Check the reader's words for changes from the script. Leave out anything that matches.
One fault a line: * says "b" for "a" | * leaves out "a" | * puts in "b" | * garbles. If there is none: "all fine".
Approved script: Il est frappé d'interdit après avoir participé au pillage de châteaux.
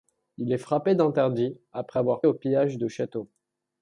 * leaves out "participé"